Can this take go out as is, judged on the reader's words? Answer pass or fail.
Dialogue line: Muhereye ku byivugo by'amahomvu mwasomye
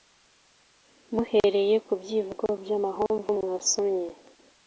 pass